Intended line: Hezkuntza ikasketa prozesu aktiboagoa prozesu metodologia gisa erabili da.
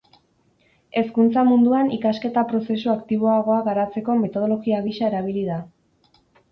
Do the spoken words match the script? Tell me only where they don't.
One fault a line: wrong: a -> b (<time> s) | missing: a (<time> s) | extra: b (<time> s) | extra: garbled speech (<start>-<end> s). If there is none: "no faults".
extra: munduan (1.5 s)
wrong: prozesu -> garatzeko (3.7 s)